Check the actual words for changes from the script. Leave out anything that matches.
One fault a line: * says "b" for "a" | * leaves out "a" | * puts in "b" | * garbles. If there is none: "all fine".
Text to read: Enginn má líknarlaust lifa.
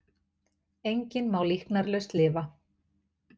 all fine